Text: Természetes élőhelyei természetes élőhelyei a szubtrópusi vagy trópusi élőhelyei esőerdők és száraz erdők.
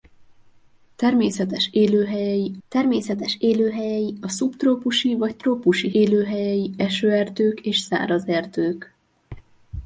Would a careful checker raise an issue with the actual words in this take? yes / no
no